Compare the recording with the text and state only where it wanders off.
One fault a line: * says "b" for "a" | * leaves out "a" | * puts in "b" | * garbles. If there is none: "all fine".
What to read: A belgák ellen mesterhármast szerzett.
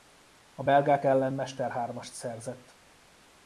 all fine